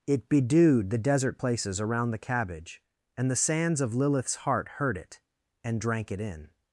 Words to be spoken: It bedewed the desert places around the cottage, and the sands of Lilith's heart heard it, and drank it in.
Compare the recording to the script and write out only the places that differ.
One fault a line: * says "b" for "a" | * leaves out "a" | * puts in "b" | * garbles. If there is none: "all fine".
* says "cabbage" for "cottage"